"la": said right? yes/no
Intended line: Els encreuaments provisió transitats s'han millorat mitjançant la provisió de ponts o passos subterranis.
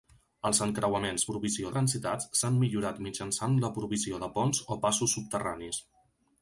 yes